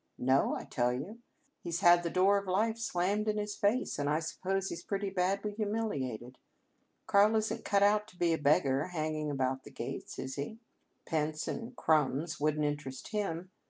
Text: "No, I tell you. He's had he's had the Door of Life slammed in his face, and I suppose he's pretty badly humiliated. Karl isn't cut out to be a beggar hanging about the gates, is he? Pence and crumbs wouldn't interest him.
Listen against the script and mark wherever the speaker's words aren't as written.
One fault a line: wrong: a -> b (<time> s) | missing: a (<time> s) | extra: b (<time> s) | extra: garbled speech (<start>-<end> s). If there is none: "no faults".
missing: he's had (2.0 s)